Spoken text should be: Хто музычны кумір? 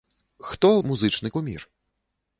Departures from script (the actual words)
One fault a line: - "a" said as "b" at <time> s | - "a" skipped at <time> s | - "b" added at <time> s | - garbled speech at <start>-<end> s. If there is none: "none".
none